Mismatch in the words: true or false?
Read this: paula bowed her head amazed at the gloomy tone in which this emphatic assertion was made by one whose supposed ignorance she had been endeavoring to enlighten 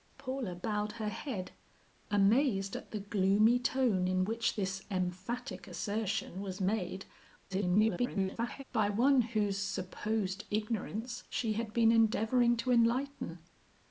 true